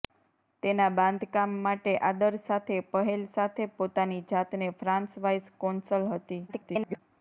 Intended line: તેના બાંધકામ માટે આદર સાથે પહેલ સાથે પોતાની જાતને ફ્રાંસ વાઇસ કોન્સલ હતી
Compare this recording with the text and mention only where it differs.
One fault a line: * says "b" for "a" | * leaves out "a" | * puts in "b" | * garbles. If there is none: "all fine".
* garbles